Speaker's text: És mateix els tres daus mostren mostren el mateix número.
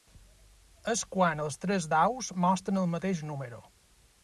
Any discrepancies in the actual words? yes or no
yes